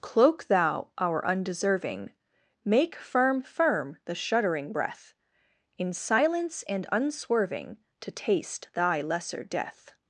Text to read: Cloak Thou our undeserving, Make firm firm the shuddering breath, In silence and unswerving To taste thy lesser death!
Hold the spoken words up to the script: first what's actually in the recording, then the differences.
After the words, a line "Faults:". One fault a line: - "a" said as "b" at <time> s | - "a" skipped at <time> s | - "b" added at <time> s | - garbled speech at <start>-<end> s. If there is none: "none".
Cloak Thou our undeserving, Make firm firm the shuddering breath, In silence and unswerving To taste thy lesser death!
Faults:
none